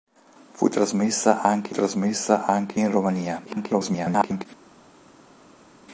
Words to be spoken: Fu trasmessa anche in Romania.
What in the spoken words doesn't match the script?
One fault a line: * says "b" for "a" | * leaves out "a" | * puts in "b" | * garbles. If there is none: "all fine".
* puts in "trasmessa anche"
* garbles